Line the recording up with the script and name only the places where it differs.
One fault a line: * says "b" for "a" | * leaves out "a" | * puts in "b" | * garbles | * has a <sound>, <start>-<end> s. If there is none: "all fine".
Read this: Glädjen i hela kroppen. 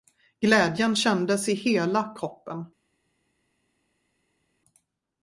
* puts in "kändes"